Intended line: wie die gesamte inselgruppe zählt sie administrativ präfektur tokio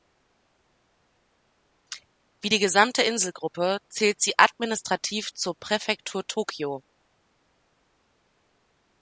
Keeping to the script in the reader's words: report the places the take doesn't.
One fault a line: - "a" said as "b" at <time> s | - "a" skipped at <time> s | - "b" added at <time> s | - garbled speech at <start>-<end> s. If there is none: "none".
- "zur" added at 5.3 s